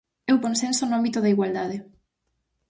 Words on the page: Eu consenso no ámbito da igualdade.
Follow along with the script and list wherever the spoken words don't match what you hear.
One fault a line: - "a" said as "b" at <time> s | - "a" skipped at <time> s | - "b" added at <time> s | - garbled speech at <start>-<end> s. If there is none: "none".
none